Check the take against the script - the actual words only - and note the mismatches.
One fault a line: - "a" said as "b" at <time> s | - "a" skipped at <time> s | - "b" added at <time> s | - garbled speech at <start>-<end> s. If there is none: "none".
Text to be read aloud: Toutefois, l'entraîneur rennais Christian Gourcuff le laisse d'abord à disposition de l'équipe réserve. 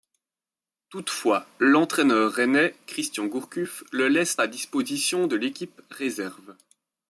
- "d'abord" skipped at 4.4 s